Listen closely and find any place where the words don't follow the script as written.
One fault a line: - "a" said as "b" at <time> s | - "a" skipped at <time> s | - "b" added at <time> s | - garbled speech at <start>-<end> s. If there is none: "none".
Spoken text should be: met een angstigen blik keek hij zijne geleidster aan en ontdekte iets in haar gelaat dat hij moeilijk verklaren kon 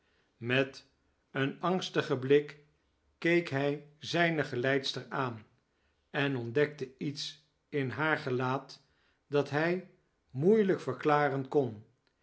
none